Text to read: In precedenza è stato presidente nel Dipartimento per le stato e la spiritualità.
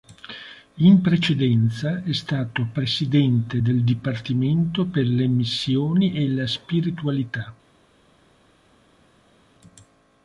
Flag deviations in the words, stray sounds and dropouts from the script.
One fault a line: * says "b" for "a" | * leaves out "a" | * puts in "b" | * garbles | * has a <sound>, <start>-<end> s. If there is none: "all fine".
* says "del" for "nel"
* says "missioni" for "stato"